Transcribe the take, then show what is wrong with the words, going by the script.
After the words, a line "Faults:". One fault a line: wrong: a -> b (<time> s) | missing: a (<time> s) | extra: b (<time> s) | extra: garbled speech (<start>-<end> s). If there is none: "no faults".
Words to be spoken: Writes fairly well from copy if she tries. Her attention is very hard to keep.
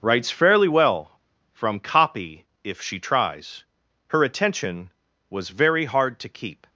Writes fairly well from copy if she tries. Her attention was very hard to keep.
Faults:
wrong: is -> was (5.3 s)